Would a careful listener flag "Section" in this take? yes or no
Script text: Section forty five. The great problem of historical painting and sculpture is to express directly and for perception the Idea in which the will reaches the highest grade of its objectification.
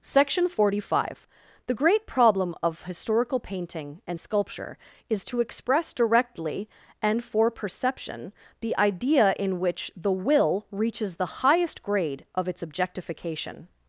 no